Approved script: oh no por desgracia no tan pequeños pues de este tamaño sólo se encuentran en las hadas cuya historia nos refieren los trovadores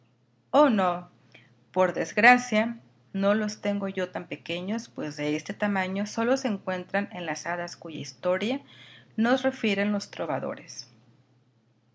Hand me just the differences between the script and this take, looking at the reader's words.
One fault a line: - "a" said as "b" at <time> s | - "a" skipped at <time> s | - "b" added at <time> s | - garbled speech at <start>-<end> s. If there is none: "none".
- "los tengo yo" added at 3.3 s